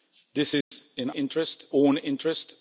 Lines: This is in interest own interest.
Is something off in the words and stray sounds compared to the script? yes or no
yes